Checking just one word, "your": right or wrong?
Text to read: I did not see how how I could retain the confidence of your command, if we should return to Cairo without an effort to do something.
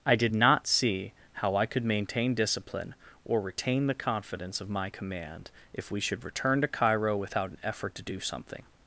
wrong